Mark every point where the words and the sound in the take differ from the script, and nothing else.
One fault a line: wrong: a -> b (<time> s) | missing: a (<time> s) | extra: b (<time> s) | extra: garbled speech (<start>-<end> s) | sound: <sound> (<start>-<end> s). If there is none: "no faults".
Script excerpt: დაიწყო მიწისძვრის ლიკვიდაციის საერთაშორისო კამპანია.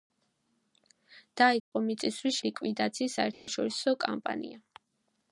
sound: dropout (1.6-1.7 s)
sound: dropout (3.3-3.5 s)